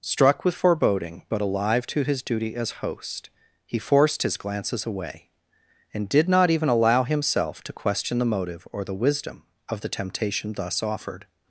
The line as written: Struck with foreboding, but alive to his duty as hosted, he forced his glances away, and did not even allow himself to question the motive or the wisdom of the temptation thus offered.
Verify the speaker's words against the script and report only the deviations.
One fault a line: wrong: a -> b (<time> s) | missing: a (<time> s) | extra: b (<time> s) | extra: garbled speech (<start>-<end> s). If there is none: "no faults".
wrong: hosted -> host (2.8 s)